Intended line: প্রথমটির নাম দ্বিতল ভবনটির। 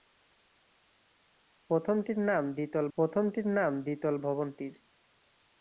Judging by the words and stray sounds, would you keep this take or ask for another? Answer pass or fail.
fail